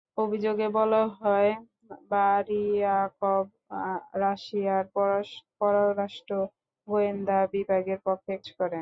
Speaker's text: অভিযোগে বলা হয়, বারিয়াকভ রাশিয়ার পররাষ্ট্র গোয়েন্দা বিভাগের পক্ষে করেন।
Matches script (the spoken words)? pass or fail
pass